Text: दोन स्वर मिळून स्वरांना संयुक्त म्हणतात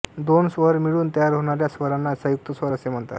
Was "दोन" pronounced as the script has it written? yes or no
yes